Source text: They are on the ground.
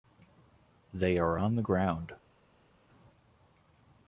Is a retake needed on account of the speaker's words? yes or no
no